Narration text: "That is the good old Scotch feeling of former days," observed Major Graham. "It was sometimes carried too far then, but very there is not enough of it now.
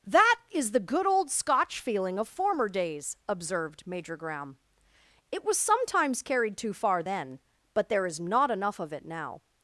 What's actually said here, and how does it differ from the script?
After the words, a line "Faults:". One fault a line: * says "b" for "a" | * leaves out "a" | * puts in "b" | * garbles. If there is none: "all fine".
"That is the good old Scotch feeling of former days," observed Major Graham. "It was sometimes carried too far then, but there is not enough of it now.
Faults:
* leaves out "very"